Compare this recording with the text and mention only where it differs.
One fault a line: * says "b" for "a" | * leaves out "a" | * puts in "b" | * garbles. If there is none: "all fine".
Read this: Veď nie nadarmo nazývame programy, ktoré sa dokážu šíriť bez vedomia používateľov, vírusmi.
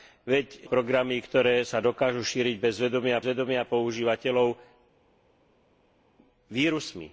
* leaves out "nie nadarmo nazývame"
* puts in "vedomia"